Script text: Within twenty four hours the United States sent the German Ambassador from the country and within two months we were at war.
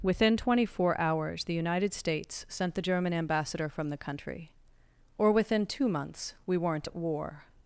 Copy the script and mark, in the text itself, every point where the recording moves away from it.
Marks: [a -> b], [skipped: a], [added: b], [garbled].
Within twenty four hours the United States sent the German Ambassador from the country [and -> or] within two months we [were -> weren't] at war.